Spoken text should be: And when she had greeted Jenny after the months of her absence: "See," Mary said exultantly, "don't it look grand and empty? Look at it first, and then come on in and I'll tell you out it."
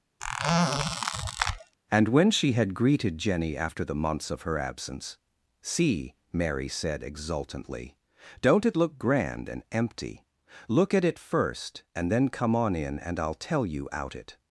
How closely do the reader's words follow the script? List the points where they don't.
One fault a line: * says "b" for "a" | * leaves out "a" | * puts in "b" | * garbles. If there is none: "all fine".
all fine